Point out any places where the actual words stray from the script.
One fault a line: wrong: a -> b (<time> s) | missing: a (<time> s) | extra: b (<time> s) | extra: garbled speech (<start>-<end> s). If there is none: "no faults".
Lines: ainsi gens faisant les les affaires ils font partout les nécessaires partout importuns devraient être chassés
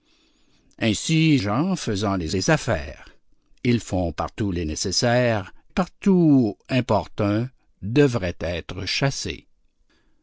no faults